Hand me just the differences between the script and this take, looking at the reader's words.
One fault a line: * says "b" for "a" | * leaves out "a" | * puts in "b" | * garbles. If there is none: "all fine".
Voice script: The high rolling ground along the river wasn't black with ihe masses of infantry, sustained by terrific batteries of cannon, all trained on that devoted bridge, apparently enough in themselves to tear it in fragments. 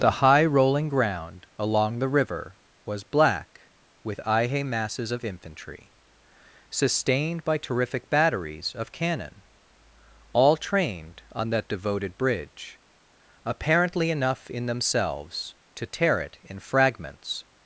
* says "was" for "wasn't"